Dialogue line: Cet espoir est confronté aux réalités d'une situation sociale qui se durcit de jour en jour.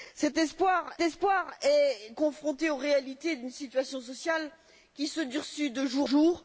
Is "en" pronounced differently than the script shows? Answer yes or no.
yes